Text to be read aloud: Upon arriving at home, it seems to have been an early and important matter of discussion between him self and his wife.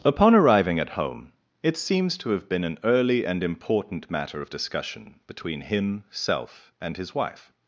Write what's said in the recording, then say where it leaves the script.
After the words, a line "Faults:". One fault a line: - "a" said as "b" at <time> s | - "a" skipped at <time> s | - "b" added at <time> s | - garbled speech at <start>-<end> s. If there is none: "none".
Upon arriving at home, it seems to have been an early and important matter of discussion between him self and his wife.
Faults:
none